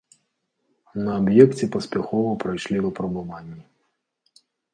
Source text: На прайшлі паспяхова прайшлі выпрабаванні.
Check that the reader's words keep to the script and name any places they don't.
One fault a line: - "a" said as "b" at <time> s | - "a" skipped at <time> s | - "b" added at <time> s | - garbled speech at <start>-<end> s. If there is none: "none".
- "прайшлі" said as "аб'екце" at 1.2 s